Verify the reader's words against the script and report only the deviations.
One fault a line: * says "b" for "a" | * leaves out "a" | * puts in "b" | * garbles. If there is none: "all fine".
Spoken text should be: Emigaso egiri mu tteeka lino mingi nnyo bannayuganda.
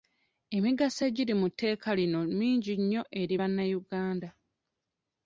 * puts in "eri"